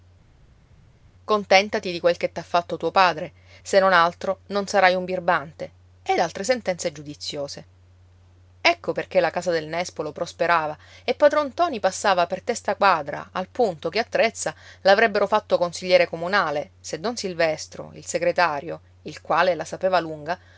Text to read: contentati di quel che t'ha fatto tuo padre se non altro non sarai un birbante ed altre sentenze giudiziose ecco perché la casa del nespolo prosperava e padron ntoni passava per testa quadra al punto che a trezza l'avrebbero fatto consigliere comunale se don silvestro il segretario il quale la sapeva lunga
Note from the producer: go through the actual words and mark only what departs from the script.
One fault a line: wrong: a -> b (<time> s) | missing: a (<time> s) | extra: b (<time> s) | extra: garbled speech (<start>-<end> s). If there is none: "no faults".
no faults